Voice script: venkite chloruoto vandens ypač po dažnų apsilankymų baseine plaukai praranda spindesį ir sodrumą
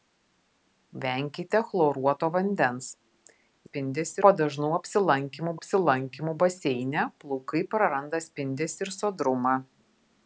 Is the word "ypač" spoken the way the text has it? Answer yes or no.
no